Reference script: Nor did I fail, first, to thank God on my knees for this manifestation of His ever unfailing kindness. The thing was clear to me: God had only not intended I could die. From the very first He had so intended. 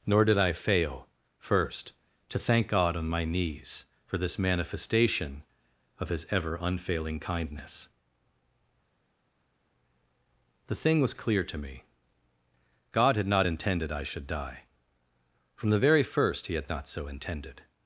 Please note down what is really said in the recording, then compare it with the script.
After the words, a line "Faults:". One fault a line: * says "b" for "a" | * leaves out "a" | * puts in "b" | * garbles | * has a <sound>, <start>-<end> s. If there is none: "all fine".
Nor did I fail, first, to thank God on my knees for this manifestation of His ever unfailing kindness. The thing was clear to me: God had not intended I should die. From the very first He had not so intended.
Faults:
* leaves out "only"
* says "should" for "could"
* puts in "not"